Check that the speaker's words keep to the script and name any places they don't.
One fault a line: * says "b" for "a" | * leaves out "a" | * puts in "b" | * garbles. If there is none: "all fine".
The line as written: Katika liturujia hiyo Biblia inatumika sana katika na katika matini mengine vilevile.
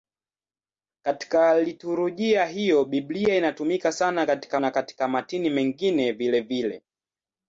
all fine